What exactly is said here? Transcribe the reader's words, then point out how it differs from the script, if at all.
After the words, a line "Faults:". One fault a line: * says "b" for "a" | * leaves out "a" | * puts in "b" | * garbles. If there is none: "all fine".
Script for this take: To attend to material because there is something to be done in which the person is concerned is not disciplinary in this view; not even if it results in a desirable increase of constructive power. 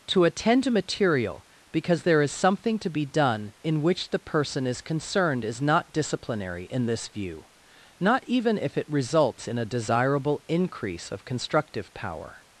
To attend to material because there is something to be done in which the person is concerned is not disciplinary in this view; not even if it results in a desirable increase of constructive power.
Faults:
all fine